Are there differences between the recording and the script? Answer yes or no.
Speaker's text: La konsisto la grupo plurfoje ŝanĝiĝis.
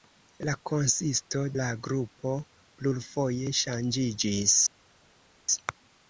no